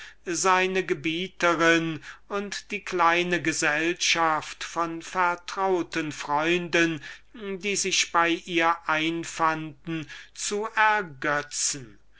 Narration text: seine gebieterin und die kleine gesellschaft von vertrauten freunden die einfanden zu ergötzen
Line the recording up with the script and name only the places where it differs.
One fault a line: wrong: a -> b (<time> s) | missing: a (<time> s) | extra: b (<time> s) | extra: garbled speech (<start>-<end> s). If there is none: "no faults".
extra: sich bei ihr (7.8 s)